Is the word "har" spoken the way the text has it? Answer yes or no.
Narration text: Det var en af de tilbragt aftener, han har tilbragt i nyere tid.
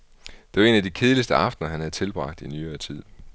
no